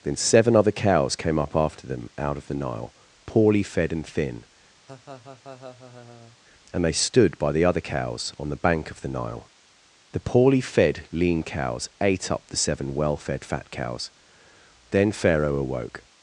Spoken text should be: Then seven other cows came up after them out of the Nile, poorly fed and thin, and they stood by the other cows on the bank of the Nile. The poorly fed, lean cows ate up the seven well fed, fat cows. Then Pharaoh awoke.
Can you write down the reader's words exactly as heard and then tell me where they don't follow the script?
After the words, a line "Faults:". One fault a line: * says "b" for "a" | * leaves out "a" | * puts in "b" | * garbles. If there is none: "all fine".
Then seven other cows came up after them out of the Nile, poorly fed and thin, and they stood by the other cows on the bank of the Nile. The poorly fed, lean cows ate up the seven well fed, fat cows. Then Pharaoh awoke.
Faults:
all fine